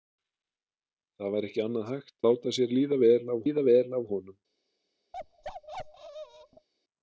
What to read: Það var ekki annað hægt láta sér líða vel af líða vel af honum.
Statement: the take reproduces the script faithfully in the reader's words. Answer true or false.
true